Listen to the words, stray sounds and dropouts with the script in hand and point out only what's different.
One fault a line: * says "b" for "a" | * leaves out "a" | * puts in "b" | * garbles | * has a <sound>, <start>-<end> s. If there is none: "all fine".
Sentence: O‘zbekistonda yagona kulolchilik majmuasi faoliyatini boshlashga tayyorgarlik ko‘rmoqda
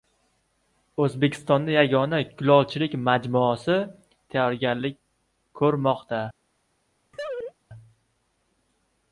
* leaves out "faoliyatini boshlashga"
* has a laugh, 7.1-7.5 s